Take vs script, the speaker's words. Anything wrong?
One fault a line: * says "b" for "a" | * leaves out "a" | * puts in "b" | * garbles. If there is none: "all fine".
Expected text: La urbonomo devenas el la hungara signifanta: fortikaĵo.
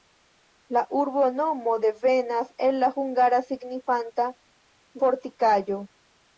all fine